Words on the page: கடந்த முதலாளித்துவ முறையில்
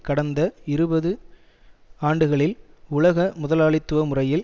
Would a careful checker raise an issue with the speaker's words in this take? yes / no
yes